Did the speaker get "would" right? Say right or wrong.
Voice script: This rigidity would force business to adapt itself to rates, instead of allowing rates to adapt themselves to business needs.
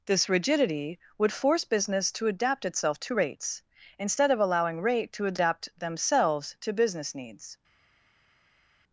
right